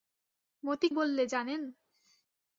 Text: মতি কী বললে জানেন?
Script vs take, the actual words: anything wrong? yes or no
yes